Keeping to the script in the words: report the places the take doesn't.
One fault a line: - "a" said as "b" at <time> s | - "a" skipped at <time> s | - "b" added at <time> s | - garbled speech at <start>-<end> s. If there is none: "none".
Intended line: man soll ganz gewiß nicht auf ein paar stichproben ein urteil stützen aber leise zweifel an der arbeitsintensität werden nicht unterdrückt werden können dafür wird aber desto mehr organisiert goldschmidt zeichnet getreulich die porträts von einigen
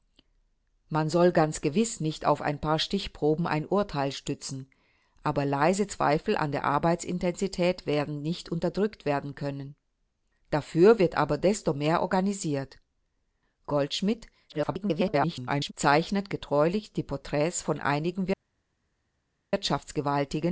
- garbled speech at 14.5-15.7 s